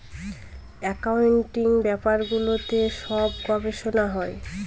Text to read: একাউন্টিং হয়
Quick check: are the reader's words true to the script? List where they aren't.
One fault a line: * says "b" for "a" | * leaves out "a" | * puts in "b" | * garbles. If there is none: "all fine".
* puts in "ব্যাপারগুলোতে সব গবেষনা"